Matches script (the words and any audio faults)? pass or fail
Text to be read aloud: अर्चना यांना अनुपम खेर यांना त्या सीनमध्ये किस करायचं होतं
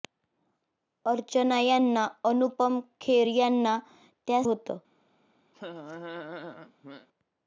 fail